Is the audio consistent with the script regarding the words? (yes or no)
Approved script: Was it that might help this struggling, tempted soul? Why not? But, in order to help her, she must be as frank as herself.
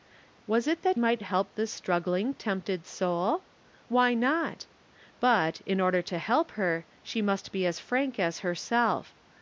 yes